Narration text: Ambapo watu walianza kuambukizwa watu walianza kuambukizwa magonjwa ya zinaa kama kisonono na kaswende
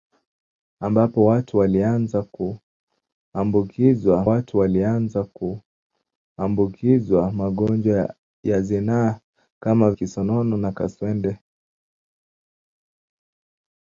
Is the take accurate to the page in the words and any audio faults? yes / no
yes